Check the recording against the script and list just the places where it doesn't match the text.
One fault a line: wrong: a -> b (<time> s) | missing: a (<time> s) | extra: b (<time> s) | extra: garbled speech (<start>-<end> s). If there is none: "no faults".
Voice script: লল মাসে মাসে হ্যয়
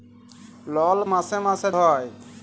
no faults